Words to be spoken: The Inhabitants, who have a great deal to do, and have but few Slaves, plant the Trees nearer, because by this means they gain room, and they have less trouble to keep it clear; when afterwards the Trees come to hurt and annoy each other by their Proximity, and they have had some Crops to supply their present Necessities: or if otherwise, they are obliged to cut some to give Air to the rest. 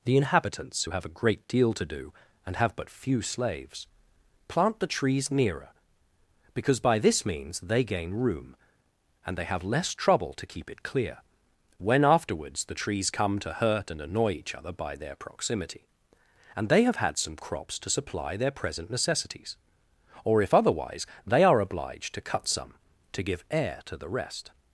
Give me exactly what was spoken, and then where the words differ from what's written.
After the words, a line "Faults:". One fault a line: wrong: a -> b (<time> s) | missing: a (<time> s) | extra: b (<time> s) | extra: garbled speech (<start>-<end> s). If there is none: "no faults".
The Inhabitants, who have a great deal to do, and have but few Slaves, plant the Trees nearer, because by this means they gain room, and they have less trouble to keep it clear; when afterwards the Trees come to hurt and annoy each other by their Proximity, and they have had some Crops to supply their present Necessities: or if otherwise, they are obliged to cut some to give Air to the rest.
Faults:
no faults